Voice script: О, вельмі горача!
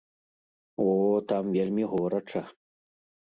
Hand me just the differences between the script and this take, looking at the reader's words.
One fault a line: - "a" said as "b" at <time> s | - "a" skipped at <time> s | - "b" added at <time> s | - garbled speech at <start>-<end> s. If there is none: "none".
- "там" added at 1.3 s